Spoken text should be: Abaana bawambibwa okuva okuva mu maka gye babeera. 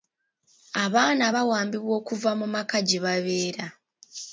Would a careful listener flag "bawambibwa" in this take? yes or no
no